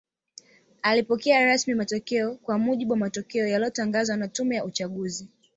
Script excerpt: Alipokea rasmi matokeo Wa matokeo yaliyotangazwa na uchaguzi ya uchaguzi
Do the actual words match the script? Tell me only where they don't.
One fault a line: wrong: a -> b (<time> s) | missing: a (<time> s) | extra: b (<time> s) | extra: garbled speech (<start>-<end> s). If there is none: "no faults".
extra: Kwa mujibu (2.4 s)
wrong: uchaguzi -> tume (4.3 s)